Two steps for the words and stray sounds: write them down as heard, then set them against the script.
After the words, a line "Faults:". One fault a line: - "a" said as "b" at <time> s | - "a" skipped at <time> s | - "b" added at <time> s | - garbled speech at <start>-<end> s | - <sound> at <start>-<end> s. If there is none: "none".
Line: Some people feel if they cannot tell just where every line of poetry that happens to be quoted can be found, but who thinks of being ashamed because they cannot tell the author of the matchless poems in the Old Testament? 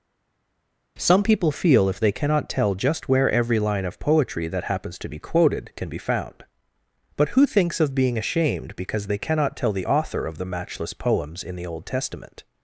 Some people feel if they cannot tell just where every line of poetry that happens to be quoted can be found, but who thinks of being ashamed because they cannot tell the author of the matchless poems in the Old Testament?
Faults:
none